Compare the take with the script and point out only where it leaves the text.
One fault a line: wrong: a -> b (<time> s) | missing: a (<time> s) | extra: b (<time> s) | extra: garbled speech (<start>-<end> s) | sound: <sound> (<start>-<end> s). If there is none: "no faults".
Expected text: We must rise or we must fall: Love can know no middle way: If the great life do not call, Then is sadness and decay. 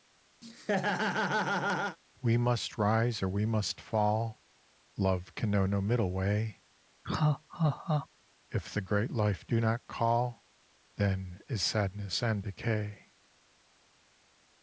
sound: laugh (0.4-2.0 s)
sound: laugh (7.0-8.1 s)